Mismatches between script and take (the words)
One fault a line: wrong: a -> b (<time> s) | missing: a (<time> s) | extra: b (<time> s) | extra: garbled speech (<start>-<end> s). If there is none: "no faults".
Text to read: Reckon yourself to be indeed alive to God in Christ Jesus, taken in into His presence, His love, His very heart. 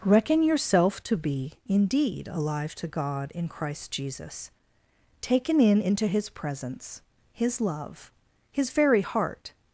no faults